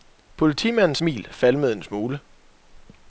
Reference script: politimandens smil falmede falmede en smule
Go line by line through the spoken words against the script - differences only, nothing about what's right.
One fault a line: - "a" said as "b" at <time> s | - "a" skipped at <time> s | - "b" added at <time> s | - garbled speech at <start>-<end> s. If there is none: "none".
- "falmede" skipped at 1.7 s